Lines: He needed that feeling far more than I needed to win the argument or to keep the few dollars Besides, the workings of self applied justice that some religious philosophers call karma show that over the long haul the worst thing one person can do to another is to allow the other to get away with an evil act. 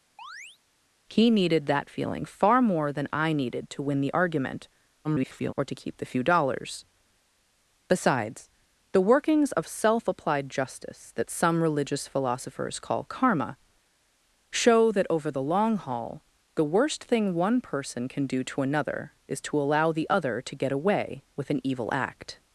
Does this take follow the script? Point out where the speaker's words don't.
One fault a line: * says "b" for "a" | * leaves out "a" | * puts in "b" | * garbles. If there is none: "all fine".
* garbles